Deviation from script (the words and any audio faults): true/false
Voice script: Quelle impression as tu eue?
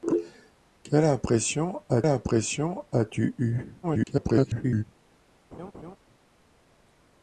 true